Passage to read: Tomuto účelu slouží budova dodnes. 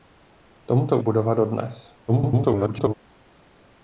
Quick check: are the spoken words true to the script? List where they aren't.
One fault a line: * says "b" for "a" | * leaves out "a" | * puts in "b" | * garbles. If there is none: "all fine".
* leaves out "účelu slouží"
* garbles